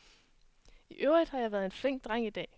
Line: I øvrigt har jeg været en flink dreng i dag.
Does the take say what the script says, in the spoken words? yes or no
yes